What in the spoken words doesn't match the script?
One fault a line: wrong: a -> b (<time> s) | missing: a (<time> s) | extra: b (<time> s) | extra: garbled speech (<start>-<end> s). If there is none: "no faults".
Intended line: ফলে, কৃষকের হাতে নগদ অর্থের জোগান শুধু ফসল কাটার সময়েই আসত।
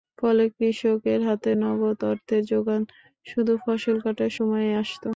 no faults